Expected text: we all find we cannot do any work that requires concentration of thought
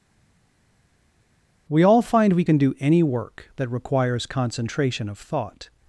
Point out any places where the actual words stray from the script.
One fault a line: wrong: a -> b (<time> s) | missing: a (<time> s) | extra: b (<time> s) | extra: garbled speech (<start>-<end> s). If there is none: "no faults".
wrong: cannot -> can (2.4 s)